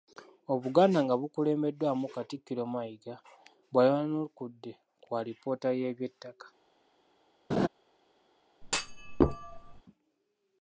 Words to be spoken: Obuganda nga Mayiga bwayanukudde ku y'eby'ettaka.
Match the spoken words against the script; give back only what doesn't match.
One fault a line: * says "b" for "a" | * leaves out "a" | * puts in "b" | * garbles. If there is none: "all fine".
* puts in "bukulembeddwamu Katikkiro"
* puts in "alipoota"